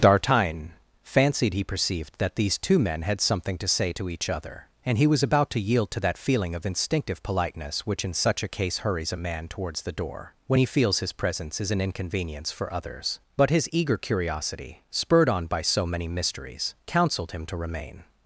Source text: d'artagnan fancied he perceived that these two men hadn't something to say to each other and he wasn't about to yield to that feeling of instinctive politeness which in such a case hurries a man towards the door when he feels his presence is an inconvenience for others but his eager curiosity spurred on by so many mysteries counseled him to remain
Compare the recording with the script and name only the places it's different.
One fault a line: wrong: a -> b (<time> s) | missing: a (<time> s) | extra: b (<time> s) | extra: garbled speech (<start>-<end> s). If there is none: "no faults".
wrong: hadn't -> had (3.0 s)
wrong: wasn't -> was (5.0 s)